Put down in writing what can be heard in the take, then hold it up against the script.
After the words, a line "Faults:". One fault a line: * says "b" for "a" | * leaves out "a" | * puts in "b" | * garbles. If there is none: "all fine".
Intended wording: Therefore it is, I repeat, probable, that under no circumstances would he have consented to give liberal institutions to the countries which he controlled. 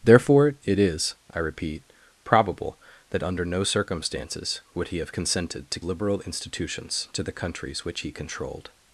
Therefore it is, I repeat, probable, that under no circumstances would he have consented to liberal institutions to the countries which he controlled.
Faults:
* leaves out "give"